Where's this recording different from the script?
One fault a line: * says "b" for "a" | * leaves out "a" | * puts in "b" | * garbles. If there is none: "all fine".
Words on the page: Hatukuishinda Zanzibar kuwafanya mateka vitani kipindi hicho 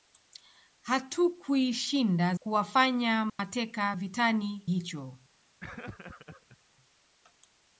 * leaves out "Zanzibar"
* leaves out "kipindi"